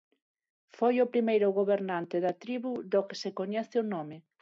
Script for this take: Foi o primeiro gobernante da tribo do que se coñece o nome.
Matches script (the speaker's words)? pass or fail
pass